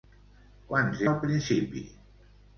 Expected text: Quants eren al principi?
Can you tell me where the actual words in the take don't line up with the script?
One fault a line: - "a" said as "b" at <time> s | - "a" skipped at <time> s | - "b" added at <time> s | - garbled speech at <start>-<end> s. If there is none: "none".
- "eren" skipped at 1.0 s